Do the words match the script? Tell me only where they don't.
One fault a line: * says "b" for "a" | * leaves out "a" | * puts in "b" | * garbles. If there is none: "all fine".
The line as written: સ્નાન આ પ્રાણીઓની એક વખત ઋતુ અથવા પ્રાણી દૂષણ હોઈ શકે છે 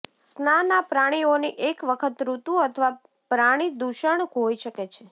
all fine